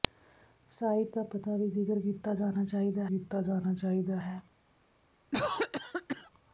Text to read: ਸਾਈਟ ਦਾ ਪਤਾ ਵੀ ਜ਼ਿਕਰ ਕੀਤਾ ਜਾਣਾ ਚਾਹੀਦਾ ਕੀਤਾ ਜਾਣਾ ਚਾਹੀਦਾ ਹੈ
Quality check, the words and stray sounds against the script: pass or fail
fail